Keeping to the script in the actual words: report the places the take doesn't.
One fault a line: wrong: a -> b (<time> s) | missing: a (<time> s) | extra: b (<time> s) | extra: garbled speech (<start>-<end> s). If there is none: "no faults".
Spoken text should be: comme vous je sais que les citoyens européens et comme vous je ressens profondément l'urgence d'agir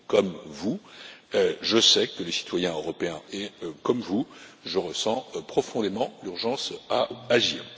no faults